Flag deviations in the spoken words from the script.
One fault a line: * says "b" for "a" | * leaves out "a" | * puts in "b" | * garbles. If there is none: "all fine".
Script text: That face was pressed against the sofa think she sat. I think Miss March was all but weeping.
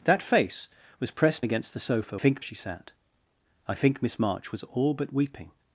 all fine